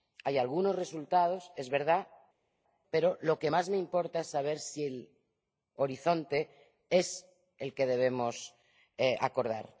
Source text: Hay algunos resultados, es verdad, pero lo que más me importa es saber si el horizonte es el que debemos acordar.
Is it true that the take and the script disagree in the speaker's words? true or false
false